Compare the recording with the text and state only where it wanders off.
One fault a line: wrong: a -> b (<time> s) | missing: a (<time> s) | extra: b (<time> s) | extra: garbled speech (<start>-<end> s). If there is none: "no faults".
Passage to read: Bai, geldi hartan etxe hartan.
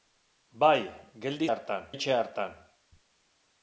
no faults